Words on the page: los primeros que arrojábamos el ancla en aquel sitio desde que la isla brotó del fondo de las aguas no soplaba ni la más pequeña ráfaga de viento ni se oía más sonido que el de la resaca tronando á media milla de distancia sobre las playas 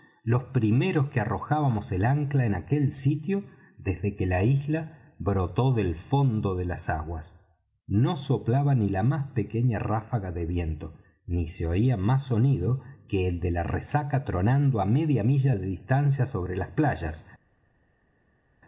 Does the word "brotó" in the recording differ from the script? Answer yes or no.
no